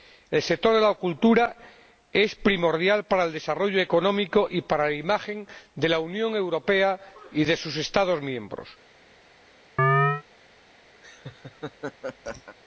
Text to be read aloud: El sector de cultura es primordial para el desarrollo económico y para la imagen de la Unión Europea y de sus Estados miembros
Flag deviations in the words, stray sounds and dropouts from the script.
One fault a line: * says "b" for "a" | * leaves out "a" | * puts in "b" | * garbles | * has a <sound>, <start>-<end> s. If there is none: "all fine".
* puts in "la"
* has a chirp, 9.8-10.2 s
* has a laugh, 11.0-12.6 s